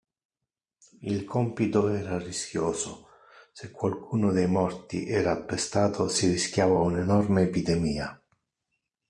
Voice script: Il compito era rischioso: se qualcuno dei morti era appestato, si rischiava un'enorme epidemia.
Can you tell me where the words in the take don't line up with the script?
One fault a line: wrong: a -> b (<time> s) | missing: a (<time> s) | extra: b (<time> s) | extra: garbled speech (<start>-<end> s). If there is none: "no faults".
no faults